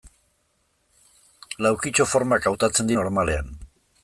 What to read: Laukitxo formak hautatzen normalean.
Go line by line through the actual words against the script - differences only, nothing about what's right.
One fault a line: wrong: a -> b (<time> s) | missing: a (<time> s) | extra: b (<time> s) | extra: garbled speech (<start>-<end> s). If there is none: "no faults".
no faults